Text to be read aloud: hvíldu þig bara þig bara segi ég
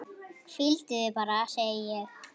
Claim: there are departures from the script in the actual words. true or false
true